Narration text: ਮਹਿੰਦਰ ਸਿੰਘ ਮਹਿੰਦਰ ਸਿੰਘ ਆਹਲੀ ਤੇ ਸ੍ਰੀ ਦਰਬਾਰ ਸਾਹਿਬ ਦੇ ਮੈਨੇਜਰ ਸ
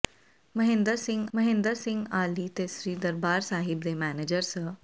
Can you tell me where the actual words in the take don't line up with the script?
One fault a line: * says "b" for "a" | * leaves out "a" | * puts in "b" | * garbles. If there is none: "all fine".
all fine